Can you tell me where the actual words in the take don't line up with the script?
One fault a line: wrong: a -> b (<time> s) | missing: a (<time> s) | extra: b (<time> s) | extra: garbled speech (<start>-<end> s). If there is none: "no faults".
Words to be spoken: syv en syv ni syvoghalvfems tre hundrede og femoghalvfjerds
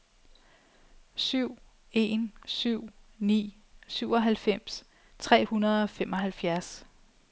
no faults